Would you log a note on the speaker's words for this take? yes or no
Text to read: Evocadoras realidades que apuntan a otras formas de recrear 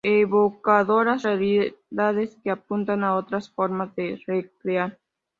no